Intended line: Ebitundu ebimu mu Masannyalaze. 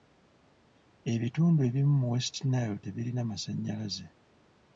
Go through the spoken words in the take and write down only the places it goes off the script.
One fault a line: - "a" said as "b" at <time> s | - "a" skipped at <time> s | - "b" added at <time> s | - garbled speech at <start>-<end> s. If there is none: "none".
- "West Nile tebirina" added at 2.1 s